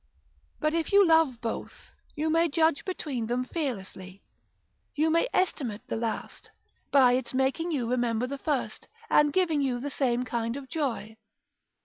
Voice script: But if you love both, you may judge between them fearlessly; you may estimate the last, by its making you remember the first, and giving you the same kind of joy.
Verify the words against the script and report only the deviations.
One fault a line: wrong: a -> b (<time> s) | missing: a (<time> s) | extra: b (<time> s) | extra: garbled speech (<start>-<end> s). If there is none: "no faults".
no faults